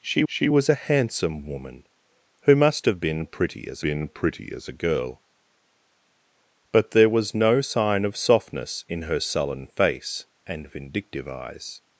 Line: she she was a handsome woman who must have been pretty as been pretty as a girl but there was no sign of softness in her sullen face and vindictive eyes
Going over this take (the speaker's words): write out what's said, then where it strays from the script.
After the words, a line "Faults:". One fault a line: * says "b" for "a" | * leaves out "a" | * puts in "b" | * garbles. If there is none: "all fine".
she she was a handsome woman who must have been pretty as been pretty as a girl but there was no sign of softness in her sullen face and vindictive eyes
Faults:
all fine